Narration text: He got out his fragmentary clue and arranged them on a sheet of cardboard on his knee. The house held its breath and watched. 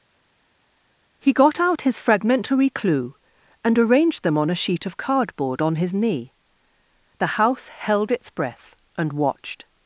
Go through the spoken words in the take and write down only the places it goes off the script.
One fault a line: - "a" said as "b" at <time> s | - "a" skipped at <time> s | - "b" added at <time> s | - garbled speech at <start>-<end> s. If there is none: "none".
none